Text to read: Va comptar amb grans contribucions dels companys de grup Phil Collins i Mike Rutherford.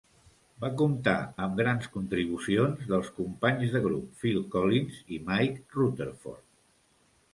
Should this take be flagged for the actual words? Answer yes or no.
no